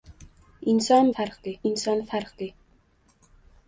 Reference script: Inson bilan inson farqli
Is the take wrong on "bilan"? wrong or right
wrong